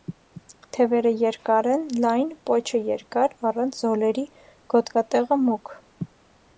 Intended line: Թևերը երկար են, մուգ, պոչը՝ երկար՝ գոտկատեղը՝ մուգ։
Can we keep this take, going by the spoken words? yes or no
no